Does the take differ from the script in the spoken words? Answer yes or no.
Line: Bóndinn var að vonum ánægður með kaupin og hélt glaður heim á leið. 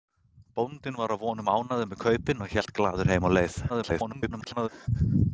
yes